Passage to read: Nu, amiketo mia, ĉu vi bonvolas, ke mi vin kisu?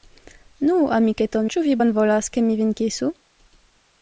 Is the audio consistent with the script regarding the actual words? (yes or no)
no